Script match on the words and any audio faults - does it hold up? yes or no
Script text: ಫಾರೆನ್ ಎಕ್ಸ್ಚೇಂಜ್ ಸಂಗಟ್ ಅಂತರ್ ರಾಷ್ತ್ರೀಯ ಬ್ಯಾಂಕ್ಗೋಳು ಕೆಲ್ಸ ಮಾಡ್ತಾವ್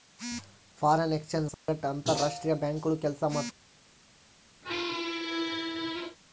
no